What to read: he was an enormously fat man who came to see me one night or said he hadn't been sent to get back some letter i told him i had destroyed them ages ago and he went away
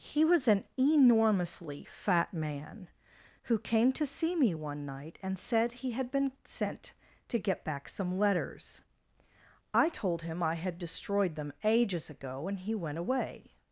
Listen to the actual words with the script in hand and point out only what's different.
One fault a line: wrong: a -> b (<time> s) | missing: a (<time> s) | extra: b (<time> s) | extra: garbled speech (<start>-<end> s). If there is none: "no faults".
wrong: or -> and (5.2 s)
wrong: hadn't -> had (5.9 s)
wrong: letter -> letters (8.2 s)